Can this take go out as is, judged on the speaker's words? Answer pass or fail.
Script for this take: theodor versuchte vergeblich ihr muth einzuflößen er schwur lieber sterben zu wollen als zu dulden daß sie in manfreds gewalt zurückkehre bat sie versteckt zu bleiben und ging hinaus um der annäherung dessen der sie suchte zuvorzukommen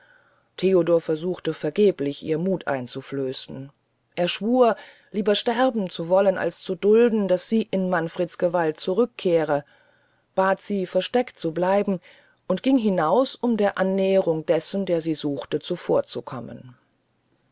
pass